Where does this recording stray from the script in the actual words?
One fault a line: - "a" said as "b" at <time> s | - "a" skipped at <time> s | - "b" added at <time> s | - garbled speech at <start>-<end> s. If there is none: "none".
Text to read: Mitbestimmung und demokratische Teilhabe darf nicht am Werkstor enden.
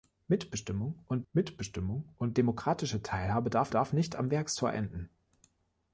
- "mitbestimmung und" added at 1.3 s
- "darf" added at 3.7 s